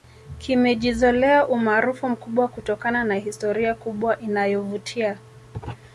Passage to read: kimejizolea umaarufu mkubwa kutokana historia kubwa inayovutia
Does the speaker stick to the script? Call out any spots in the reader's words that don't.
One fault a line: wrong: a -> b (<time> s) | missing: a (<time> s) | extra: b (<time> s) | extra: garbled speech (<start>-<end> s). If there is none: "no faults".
extra: na (3.0 s)